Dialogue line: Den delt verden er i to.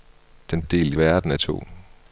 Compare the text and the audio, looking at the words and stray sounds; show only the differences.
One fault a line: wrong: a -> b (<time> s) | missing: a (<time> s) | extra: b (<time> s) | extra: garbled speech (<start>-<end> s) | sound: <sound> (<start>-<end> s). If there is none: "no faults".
no faults